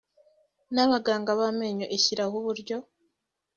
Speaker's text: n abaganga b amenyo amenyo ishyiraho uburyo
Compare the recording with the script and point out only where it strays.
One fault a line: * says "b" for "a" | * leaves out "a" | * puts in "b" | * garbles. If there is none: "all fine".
* leaves out "amenyo"